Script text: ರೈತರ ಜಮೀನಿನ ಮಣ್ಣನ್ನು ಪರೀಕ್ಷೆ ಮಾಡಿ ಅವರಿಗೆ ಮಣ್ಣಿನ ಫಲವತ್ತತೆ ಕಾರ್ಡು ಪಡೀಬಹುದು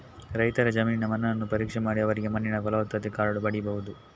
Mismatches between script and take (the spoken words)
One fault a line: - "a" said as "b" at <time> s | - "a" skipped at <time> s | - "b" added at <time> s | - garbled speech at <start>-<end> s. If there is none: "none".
none